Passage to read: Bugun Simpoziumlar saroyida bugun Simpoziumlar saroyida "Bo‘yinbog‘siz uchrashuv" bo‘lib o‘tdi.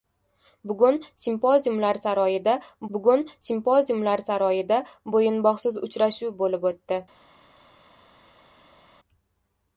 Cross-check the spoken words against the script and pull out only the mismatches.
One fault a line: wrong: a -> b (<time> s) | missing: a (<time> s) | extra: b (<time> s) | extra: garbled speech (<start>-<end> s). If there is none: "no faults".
no faults